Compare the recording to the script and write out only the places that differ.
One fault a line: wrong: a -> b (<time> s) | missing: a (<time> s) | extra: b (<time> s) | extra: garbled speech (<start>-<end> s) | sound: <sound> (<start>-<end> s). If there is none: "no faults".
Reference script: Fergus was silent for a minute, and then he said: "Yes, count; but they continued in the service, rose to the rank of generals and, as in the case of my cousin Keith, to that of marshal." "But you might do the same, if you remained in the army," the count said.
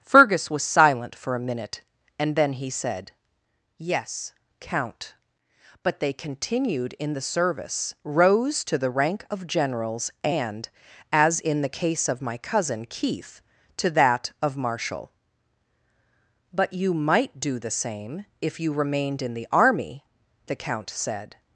no faults